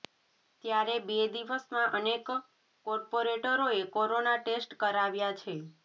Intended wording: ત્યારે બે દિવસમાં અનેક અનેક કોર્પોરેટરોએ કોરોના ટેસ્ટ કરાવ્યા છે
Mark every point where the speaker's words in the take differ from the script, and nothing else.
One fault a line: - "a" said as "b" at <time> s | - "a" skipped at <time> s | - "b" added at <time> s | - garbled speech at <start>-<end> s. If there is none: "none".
- "અનેક" skipped at 2.3 s